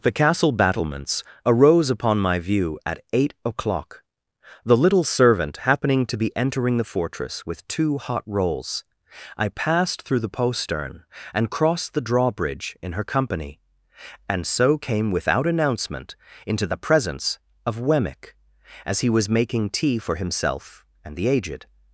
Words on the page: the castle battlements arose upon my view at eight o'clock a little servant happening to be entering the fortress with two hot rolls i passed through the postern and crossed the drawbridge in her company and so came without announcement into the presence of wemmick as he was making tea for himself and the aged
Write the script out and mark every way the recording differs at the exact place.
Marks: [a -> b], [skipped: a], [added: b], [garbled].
the castle battlements arose upon my view at eight o'clock [a -> the] little servant happening to be entering the fortress with two hot rolls i passed through the postern and crossed the drawbridge in her company and so came without announcement into the presence of wemmick as he was making tea for himself and the aged